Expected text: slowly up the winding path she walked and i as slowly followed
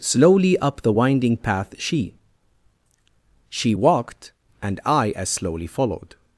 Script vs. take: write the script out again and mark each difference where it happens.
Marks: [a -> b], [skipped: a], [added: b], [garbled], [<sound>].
slowly up the winding path she [added: she] walked and i as slowly followed